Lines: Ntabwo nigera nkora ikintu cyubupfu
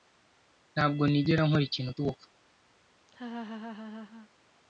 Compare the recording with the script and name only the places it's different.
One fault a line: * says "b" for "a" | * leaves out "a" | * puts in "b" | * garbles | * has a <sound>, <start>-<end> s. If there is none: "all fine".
* has a laugh, 3.1-4.3 s